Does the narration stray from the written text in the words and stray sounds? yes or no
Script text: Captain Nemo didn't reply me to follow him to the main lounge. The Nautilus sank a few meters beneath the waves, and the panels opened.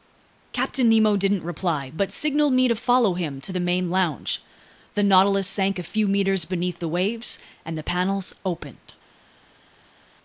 yes